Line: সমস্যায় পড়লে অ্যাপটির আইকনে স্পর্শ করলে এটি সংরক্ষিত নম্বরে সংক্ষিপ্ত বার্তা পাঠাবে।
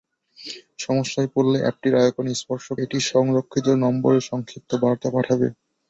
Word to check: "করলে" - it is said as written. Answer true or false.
false